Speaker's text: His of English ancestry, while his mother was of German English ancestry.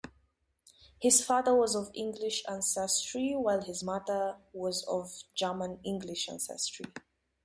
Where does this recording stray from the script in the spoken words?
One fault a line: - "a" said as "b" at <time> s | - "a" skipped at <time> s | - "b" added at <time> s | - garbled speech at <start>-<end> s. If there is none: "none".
- "father was" added at 1.2 s